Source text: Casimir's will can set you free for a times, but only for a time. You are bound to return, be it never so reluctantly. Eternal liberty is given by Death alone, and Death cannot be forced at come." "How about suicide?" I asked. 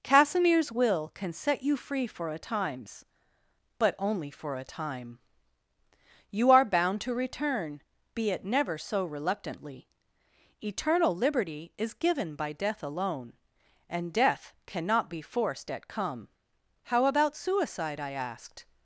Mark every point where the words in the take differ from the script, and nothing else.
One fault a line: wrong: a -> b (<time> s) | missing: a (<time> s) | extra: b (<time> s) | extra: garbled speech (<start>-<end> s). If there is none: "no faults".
no faults